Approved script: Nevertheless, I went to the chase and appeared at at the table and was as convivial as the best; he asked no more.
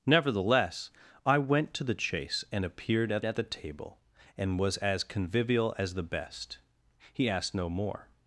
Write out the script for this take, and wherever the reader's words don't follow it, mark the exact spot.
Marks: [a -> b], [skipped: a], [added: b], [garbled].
Nevertheless, I went to the chase and appeared at at the table and was as convivial as the best; he asked no more.